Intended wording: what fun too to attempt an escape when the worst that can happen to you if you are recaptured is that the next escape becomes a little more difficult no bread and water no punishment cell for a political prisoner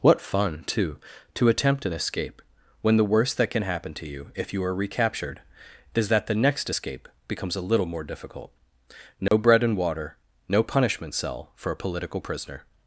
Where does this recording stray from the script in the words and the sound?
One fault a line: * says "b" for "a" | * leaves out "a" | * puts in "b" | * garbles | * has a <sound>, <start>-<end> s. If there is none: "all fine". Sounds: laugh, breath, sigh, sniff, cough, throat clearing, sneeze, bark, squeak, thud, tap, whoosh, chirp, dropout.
* has a dropout, 9.3-9.3 s